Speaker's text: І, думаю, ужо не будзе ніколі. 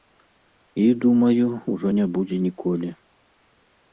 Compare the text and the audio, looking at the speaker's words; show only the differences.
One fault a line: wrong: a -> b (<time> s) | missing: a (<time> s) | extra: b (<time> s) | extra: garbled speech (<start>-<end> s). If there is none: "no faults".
no faults